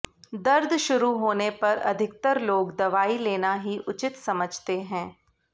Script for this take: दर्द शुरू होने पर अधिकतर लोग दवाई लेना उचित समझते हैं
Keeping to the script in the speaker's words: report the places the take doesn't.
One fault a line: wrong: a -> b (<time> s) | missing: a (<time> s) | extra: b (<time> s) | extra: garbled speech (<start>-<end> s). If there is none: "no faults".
extra: ही (3.6 s)